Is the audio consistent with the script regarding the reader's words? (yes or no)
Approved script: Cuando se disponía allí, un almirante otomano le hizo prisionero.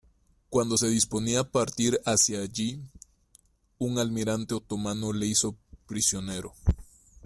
no